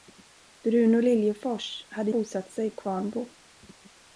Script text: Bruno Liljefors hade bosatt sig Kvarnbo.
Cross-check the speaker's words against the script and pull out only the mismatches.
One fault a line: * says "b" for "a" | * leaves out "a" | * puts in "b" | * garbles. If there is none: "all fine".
all fine